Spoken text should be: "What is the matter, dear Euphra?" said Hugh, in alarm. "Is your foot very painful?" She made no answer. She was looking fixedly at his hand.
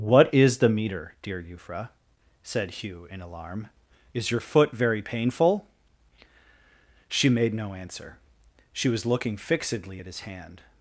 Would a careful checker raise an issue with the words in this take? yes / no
yes